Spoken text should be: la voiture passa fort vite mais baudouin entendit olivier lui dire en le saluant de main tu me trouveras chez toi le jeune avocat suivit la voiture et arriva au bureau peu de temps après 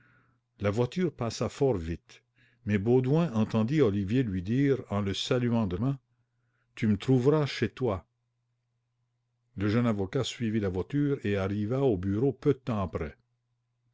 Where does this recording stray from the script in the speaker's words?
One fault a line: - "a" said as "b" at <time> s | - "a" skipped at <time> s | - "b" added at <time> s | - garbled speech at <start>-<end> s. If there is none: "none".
none